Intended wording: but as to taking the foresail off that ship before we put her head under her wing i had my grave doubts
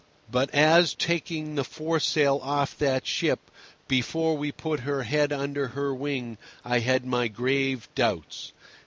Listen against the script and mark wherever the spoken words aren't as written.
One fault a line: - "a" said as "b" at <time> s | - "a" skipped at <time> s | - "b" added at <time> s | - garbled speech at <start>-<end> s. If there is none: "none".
- "to" skipped at 0.9 s